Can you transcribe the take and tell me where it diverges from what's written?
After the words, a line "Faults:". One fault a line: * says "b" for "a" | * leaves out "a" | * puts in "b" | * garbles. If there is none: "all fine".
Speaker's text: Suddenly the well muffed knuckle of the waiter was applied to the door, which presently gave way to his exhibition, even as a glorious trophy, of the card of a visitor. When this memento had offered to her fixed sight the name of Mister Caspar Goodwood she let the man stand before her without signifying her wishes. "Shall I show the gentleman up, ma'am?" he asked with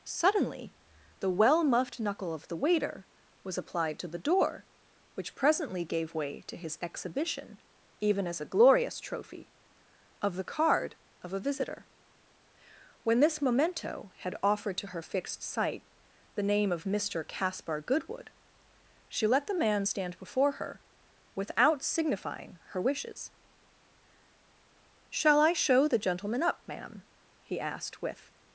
Suddenly the well muffed knuckle of the waiter was applied to the door, which presently gave way to his exhibition, even as a glorious trophy, of the card of a visitor. When this memento had offered to her fixed sight the name of Mister Caspar Goodwood she let the man stand before her without signifying her wishes. "Shall I show the gentleman up, ma'am?" he asked with
Faults:
all fine